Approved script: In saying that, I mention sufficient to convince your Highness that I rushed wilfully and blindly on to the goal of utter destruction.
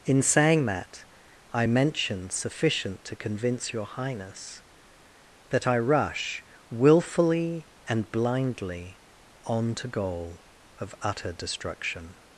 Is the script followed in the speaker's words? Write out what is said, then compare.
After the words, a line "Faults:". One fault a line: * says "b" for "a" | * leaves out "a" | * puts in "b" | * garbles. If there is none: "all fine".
In saying that, I mention sufficient to convince your Highness that I rush wilfully and blindly on to goal of utter destruction.
Faults:
* says "rush" for "rushed"
* leaves out "the"